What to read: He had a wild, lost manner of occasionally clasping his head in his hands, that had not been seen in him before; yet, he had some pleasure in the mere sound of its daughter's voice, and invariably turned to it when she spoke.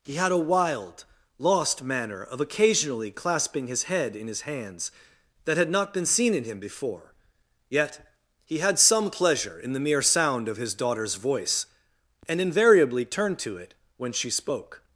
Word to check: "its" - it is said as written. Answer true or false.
false